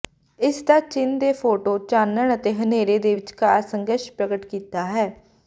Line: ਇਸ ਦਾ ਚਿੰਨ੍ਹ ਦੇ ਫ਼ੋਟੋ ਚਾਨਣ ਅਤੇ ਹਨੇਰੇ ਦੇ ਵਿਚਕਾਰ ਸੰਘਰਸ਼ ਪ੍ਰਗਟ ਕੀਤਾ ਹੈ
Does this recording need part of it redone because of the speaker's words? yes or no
no